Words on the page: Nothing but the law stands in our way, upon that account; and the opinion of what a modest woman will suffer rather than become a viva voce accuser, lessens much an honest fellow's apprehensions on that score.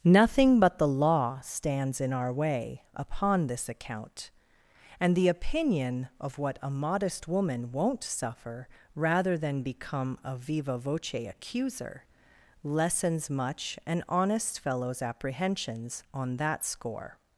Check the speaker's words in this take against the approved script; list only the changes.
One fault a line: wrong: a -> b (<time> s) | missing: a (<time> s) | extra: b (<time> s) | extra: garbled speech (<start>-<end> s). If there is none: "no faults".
wrong: that -> this (3.5 s)
wrong: will -> won't (7.7 s)